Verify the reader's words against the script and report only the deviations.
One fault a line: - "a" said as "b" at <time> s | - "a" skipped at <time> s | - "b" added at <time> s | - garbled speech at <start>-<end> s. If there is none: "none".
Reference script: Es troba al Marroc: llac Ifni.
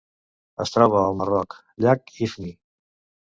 none